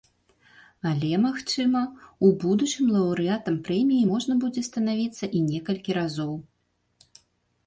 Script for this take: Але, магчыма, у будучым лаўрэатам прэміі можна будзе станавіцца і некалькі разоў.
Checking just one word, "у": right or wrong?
right